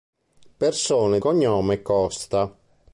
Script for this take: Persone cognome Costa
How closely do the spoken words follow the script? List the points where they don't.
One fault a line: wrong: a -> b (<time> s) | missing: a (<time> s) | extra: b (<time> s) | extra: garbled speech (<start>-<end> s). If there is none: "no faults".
no faults